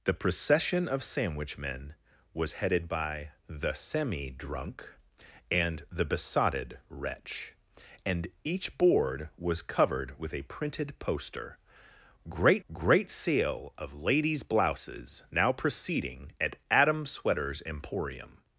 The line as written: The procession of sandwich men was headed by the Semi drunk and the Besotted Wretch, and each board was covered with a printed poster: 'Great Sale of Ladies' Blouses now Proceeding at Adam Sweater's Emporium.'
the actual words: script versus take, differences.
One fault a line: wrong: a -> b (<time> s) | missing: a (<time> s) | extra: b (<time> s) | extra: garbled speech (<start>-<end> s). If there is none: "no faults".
extra: great (12.7 s)